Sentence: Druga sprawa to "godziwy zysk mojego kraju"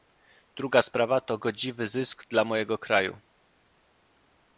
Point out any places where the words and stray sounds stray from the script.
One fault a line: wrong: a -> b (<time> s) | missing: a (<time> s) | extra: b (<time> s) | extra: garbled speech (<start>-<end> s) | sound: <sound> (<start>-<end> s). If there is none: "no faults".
extra: dla (2.3 s)